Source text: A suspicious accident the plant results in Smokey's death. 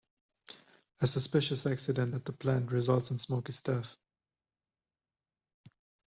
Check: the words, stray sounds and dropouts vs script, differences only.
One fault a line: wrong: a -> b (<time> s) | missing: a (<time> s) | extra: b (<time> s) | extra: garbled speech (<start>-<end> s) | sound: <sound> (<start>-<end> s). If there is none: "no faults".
extra: at (2.1 s)